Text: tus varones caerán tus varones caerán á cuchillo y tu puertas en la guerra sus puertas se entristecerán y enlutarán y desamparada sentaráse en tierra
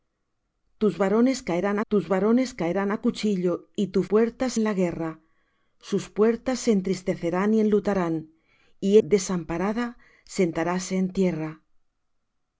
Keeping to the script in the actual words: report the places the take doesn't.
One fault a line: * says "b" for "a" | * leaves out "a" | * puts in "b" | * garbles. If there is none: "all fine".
all fine